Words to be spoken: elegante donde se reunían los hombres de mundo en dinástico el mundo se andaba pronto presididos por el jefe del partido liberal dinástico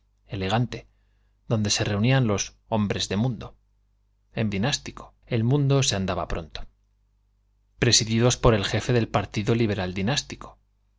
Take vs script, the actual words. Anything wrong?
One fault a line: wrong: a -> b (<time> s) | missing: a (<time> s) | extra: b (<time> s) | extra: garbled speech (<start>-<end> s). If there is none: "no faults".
no faults